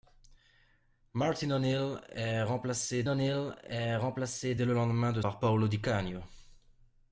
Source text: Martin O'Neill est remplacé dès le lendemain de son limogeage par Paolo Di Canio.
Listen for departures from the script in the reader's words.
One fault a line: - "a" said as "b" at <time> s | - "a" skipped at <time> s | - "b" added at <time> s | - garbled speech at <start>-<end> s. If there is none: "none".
- "O'Neill est remplacé" added at 3.1 s
- "son limogeage" skipped at 5.2 s